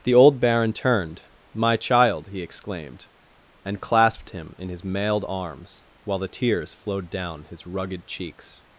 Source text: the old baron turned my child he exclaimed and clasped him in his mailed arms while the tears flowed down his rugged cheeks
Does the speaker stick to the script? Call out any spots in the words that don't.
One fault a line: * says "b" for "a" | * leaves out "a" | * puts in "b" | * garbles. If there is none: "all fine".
all fine